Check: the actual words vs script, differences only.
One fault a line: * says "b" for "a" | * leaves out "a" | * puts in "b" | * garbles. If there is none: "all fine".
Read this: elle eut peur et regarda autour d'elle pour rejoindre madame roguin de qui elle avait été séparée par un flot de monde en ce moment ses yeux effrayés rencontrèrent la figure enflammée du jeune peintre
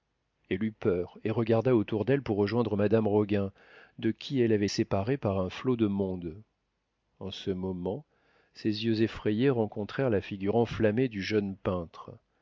* leaves out "été"